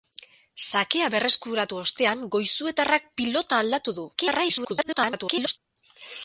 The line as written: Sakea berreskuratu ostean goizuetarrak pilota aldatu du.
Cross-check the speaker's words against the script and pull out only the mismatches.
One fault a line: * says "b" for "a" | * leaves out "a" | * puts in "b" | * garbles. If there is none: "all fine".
* garbles